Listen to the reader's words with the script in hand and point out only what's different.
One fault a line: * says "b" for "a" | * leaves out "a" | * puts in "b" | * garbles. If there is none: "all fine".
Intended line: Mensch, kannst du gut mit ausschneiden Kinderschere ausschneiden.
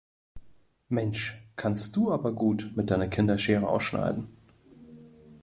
* puts in "aber"
* says "deiner" for "ausschneiden"